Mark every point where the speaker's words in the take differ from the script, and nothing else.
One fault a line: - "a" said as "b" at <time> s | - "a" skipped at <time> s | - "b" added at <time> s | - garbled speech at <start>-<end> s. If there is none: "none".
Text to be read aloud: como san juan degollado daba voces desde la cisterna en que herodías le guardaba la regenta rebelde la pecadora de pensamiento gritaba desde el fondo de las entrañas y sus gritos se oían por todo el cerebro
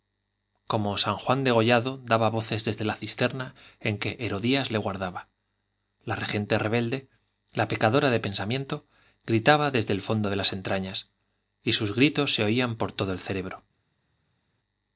none